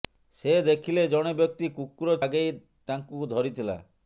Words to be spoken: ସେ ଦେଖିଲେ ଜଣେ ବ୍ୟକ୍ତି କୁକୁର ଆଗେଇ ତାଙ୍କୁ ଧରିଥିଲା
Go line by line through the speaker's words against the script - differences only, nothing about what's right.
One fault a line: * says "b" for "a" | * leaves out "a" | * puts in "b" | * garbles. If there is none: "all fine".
all fine